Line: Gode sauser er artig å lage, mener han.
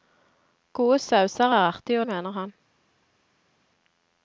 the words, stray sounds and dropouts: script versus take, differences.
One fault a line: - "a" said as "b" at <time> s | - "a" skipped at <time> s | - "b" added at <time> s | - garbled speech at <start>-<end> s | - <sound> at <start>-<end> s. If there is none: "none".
- "lage" skipped at 2.1 s